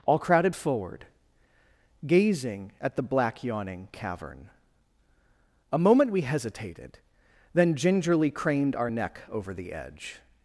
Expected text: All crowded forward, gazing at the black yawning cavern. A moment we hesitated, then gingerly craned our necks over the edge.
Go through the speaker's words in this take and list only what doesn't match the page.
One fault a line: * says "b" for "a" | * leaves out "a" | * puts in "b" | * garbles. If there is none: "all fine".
* says "neck" for "necks"